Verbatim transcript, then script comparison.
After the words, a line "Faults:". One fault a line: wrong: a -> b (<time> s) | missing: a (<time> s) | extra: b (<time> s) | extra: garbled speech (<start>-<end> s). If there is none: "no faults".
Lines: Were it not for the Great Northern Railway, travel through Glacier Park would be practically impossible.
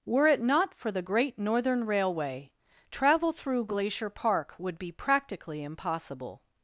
Were it not for the Great Northern Railway, travel through Glacier Park would be practically impossible.
Faults:
no faults